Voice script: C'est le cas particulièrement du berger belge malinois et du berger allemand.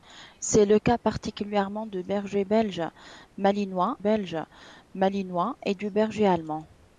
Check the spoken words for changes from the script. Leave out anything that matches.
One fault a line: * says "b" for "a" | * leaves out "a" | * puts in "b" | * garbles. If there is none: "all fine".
* puts in "belge malinois"